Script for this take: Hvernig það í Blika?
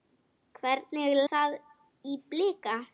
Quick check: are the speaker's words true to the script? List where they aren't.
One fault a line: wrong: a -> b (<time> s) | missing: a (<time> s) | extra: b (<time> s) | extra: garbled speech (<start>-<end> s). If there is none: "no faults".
no faults